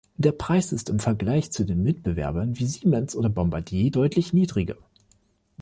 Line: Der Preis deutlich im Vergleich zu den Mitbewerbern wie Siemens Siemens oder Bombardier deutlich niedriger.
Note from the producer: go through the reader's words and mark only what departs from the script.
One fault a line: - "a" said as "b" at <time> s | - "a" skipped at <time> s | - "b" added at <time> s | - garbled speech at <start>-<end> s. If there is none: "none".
- "deutlich" said as "ist" at 0.7 s
- "Siemens" skipped at 3.1 s